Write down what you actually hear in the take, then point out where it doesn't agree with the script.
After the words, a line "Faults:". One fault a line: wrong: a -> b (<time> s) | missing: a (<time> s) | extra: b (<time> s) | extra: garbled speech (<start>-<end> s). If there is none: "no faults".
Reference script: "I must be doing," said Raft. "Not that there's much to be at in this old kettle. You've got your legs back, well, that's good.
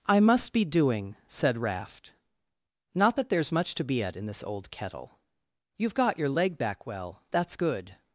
"I must be doing," said Raft. "Not that there's much to be at in this old kettle. You've got your leg back, well, that's good.
Faults:
wrong: legs -> leg (6.3 s)